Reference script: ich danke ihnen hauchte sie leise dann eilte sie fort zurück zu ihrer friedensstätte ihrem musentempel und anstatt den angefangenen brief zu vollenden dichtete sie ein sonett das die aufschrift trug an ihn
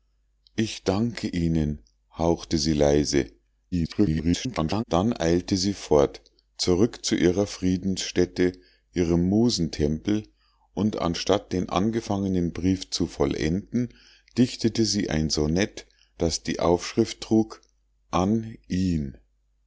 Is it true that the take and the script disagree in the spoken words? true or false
true